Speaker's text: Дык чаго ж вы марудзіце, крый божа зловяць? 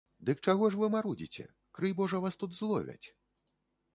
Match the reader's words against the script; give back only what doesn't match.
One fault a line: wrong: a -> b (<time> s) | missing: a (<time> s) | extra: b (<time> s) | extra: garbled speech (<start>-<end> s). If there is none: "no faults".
extra: вас тут (2.2 s)